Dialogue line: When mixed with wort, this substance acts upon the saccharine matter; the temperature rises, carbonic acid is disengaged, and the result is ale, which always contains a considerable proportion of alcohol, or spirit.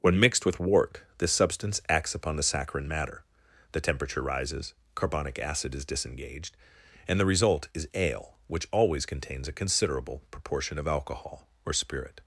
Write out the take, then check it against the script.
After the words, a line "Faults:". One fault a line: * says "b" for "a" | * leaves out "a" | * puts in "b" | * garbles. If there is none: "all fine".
When mixed with wort, this substance acts upon the saccharine matter; the temperature rises, carbonic acid is disengaged, and the result is ale, which always contains a considerable proportion of alcohol, or spirit.
Faults:
all fine